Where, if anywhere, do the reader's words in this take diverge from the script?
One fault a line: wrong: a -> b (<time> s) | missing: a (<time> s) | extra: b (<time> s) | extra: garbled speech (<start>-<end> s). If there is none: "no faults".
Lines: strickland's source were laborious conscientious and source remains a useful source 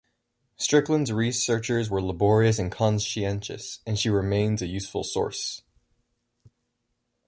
wrong: source -> researches (1.1 s)
extra: and (2.6 s)
wrong: source -> she (4.0 s)